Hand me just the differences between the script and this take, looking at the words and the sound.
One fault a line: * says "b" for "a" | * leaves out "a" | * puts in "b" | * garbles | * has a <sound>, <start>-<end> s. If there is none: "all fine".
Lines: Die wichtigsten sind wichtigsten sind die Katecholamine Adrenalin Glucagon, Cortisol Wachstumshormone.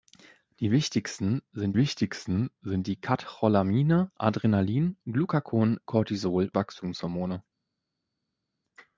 all fine